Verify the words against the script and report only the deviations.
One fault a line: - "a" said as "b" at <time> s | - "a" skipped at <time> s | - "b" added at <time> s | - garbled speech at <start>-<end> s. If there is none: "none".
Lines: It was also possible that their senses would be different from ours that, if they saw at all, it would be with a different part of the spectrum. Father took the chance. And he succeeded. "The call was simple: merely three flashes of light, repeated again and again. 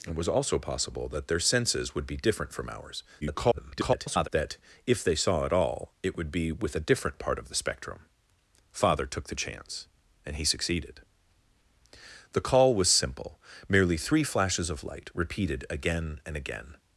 - garbled speech at 3.2-4.3 s